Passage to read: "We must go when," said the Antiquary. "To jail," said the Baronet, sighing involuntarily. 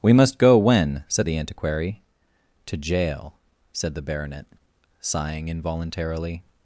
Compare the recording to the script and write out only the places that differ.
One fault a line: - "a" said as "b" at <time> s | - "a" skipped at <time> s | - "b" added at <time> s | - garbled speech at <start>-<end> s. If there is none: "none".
none